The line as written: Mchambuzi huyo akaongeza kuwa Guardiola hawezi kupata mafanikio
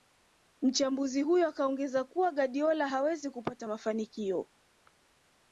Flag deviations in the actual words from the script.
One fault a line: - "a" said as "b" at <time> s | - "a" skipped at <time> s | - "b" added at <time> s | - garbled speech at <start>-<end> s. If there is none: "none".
none